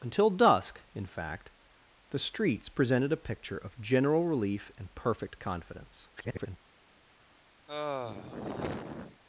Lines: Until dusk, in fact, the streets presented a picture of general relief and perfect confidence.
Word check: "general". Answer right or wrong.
right